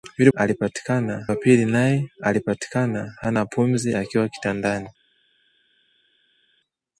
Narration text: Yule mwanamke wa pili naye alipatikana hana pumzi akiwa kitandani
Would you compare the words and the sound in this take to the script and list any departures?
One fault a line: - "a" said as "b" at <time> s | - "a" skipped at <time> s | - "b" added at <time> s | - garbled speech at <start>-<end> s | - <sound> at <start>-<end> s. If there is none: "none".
- "mwanamke" said as "alipatikana" at 0.3 s